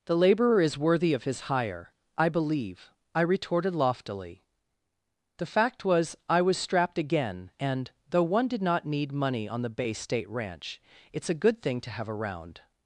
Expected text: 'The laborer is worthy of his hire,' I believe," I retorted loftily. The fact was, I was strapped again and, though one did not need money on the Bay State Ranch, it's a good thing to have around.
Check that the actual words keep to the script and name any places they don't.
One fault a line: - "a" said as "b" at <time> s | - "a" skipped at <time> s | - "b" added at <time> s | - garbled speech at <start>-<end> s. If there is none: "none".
none